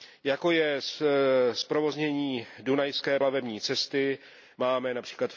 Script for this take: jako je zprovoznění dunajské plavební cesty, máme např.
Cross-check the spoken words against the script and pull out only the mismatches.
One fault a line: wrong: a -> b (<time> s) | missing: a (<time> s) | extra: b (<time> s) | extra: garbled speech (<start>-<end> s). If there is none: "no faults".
no faults